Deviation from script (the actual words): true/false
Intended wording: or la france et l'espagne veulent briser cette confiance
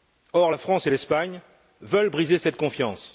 false